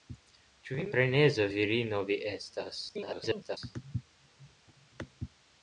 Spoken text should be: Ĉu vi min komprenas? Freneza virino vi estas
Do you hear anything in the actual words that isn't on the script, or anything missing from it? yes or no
yes